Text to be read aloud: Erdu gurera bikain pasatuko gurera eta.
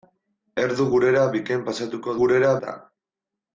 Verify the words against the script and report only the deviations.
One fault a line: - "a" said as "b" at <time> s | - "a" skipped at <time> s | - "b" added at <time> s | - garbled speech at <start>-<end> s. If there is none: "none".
none